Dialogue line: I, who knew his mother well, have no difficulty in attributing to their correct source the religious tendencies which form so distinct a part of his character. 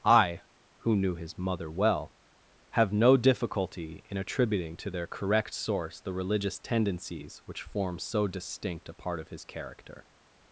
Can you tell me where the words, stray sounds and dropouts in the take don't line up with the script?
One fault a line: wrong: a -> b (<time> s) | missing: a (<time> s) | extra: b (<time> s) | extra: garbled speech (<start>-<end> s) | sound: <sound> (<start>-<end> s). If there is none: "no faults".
no faults